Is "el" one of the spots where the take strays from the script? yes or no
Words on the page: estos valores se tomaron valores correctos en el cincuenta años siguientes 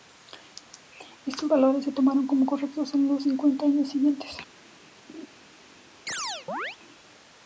yes